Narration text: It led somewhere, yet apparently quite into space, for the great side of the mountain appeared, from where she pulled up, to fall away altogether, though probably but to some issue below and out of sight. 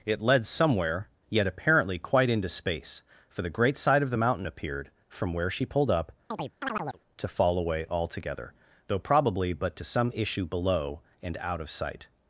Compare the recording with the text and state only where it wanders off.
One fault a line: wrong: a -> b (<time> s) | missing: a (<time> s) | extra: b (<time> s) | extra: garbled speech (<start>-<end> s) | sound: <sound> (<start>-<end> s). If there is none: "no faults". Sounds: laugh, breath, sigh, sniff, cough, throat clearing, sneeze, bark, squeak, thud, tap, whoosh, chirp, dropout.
sound: chirp (6.3-7.0 s)